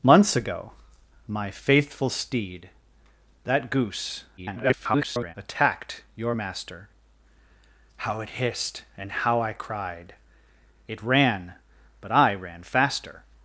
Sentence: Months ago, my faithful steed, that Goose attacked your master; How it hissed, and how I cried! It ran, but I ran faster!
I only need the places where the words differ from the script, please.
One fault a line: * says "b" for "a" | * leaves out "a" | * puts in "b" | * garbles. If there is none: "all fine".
* garbles